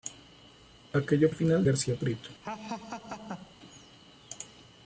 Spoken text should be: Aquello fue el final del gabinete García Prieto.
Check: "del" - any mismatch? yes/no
yes